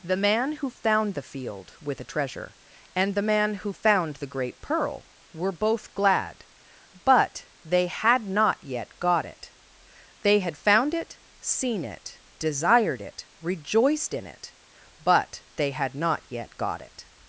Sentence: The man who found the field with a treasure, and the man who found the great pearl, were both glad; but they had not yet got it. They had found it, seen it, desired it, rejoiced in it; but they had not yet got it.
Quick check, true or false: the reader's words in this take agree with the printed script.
true